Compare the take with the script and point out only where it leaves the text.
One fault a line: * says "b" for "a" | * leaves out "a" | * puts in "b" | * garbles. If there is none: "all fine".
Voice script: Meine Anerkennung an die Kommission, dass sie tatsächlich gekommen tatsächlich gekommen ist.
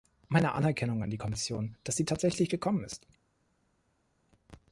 * leaves out "tatsächlich gekommen"